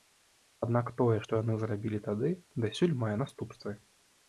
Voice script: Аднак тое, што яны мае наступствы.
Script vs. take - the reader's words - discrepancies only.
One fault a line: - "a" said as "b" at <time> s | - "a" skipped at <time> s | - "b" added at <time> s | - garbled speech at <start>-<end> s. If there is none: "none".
- "зрабілі тады дасюль" added at 1.6 s